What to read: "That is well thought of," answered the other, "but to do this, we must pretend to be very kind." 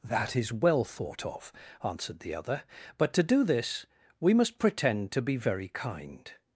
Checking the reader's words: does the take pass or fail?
pass